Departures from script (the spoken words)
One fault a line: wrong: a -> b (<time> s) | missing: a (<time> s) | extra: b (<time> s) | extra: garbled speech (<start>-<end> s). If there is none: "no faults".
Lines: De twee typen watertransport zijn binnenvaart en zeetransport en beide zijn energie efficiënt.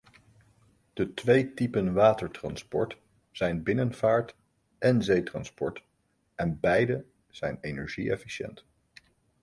no faults